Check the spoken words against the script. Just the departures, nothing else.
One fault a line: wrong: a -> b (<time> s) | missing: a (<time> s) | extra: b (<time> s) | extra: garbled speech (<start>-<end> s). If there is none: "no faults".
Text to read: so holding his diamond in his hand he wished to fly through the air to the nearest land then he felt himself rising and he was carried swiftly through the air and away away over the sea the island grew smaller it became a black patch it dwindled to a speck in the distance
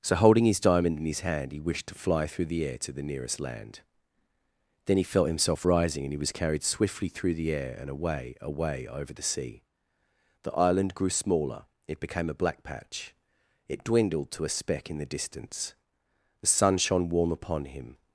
extra: the sun shone warm upon him (16.4 s)